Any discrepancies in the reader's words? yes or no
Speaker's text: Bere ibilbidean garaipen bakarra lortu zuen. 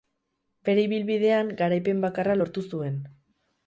no